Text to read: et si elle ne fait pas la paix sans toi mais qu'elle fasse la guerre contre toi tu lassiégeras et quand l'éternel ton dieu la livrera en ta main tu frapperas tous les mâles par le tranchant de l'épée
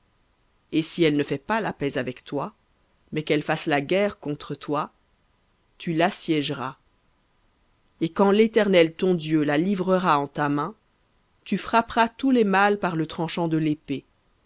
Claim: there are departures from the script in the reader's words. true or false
true